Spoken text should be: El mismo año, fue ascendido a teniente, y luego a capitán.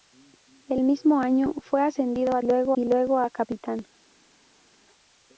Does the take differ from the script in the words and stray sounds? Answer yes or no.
yes